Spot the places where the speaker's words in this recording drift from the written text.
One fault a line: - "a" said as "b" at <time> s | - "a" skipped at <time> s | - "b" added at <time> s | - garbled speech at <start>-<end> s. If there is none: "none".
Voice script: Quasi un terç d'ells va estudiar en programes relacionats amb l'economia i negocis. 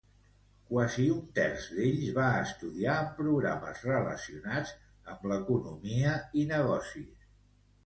none